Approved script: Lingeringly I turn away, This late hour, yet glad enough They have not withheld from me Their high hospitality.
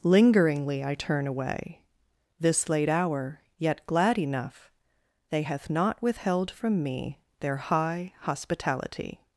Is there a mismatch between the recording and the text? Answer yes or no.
yes